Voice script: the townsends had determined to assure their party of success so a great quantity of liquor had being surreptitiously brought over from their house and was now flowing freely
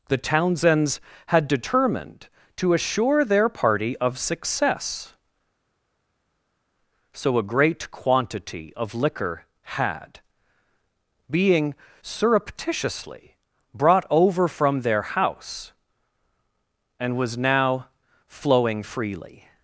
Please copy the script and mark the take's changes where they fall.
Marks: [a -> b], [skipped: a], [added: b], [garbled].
the townsends had determined to assure their party of success so a great quantity of liquor had being surreptitiously brought over from their house and was now flowing freely